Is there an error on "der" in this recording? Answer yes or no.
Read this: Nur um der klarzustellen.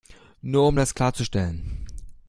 yes